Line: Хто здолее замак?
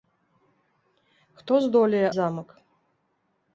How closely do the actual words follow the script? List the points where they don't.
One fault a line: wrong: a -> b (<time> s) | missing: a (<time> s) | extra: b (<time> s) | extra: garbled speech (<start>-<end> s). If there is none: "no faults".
no faults